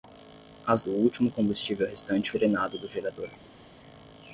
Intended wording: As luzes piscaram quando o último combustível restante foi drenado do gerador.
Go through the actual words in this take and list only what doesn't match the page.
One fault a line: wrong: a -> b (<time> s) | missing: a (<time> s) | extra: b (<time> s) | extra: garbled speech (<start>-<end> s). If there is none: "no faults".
missing: luzes piscaram quando (0.9 s)
missing: foi (2.3 s)